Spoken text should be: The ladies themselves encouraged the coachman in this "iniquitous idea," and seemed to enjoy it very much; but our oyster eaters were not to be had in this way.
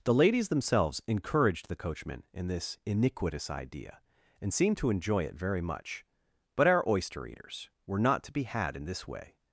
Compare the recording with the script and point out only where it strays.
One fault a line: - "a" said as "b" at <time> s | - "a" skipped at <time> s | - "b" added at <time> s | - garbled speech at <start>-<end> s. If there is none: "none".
none